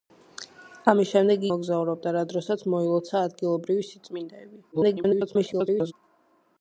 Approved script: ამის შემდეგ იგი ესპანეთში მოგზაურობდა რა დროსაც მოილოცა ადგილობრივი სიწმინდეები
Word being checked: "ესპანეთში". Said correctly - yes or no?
no